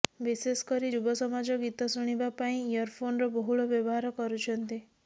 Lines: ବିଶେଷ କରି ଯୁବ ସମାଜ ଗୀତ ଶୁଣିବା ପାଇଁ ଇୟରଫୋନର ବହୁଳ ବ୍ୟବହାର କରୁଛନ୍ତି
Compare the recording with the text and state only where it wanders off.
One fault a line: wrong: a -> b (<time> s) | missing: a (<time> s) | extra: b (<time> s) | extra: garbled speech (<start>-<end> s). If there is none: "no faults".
no faults